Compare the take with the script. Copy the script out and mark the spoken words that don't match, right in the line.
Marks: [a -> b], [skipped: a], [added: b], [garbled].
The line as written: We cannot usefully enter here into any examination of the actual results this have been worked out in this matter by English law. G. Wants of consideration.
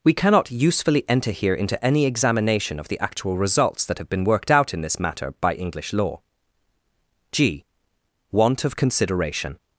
We cannot usefully enter here into any examination of the actual results [this -> that] have been worked out in this matter by English law. G. [Wants -> Want] of consideration.